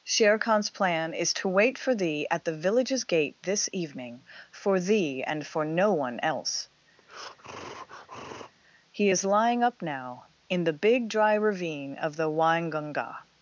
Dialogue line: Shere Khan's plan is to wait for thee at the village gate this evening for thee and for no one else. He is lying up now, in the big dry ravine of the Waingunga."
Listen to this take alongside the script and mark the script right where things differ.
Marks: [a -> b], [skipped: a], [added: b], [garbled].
Shere Khan's plan is to wait for thee at the [village -> villages] gate this evening for thee and for no one else. He is lying up now, in the big dry ravine of the Waingunga."